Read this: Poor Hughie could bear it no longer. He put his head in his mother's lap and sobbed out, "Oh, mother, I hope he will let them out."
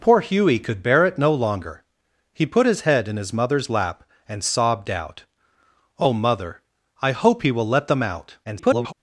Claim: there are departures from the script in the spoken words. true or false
true